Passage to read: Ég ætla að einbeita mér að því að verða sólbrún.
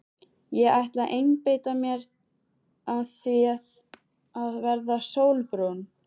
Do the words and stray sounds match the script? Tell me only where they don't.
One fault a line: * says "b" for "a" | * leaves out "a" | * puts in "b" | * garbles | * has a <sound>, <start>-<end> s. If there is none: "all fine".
all fine